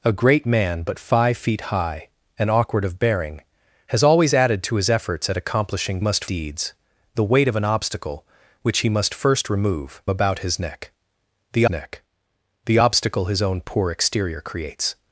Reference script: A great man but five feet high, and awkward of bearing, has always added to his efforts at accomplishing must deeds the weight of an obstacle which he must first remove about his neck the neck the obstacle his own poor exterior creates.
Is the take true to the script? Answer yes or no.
yes